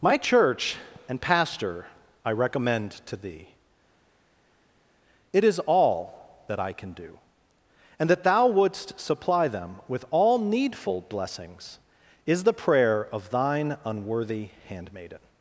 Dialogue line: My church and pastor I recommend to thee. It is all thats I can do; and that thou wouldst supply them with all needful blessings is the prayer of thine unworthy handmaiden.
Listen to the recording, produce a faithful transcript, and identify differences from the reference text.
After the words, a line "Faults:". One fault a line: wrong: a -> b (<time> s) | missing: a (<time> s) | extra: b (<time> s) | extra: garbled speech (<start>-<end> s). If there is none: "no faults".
My church and pastor I recommend to thee. It is all that I can do; and that thou wouldst supply them with all needful blessings is the prayer of thine unworthy handmaiden.
Faults:
wrong: thats -> that (6.5 s)